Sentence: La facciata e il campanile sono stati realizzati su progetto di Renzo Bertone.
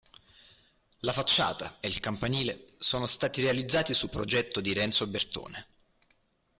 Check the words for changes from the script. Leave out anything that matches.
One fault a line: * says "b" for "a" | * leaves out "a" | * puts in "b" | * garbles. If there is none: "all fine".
all fine